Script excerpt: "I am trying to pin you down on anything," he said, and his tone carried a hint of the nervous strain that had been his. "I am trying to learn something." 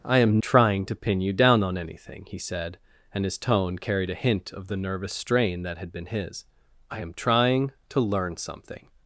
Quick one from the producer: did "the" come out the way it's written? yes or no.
yes